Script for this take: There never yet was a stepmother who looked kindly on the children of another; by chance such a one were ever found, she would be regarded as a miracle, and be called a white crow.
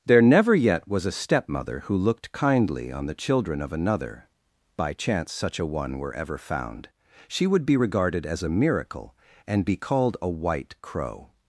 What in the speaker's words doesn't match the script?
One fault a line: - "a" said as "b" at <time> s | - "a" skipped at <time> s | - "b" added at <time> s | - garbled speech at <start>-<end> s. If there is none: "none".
none